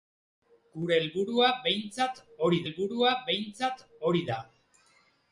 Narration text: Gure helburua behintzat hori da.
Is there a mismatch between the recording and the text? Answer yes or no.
yes